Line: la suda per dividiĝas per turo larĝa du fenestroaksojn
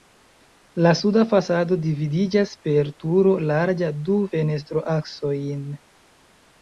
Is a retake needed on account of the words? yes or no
yes